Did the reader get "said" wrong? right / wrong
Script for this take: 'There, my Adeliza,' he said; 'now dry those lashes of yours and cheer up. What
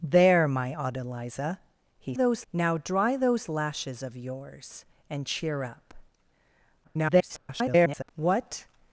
wrong